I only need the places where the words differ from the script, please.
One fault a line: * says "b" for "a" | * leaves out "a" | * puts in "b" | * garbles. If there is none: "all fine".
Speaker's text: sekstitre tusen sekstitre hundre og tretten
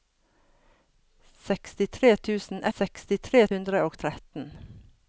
all fine